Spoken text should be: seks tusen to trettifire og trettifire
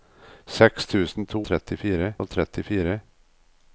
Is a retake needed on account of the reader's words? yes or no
no